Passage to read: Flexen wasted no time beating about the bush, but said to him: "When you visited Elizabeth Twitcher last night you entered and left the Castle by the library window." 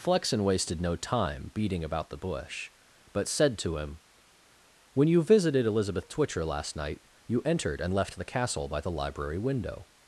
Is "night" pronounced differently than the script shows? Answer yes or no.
no